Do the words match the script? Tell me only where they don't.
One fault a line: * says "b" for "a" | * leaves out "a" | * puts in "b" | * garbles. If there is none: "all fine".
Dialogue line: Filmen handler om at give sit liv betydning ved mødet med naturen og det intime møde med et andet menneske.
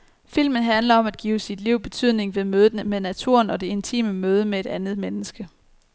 all fine